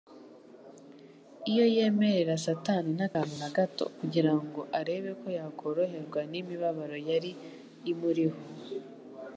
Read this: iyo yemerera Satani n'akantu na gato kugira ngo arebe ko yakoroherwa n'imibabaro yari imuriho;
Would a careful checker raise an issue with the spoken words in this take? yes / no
no